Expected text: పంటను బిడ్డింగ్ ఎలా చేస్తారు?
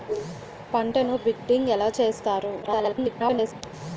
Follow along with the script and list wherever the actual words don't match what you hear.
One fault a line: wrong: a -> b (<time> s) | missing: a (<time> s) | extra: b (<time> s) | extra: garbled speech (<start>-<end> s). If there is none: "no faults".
extra: garbled speech (2.6-3.6 s)